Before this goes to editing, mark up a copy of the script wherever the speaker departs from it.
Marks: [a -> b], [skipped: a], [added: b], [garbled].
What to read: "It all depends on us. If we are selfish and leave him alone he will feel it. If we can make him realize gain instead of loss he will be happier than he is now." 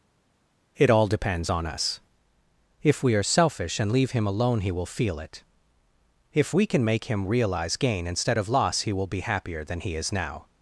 "It all depends on us. If we are selfish and leave him alone he will feel it. If we can make him realize gain instead of loss he will be happier than he is now."